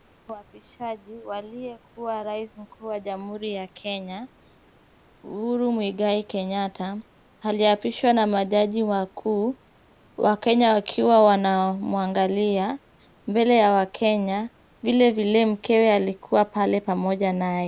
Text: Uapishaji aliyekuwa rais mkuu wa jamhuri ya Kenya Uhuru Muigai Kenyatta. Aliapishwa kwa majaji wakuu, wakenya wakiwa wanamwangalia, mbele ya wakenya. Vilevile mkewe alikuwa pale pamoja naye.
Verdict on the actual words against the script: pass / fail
fail